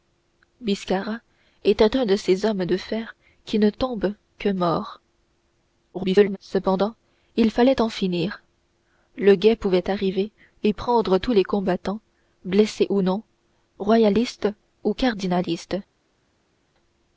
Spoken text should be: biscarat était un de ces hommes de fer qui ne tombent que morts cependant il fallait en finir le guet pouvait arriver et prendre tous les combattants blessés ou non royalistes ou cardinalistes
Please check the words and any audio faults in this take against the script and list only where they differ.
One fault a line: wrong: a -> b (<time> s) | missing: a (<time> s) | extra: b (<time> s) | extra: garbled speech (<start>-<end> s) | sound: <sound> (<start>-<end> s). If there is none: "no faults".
extra: garbled speech (5.9-6.4 s)